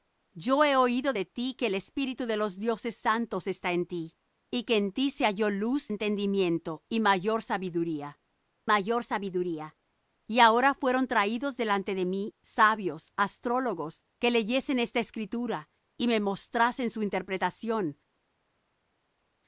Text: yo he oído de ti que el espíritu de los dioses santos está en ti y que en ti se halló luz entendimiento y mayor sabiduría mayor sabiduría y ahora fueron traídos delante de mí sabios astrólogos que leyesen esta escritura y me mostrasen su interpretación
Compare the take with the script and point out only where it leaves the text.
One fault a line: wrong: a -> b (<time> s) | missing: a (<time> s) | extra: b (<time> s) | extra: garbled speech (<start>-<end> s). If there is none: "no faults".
no faults